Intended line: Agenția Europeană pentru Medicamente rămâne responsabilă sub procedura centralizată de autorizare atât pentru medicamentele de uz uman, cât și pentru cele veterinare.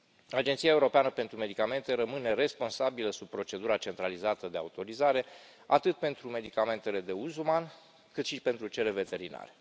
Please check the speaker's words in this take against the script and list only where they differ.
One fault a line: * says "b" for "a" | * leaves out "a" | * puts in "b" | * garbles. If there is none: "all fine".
all fine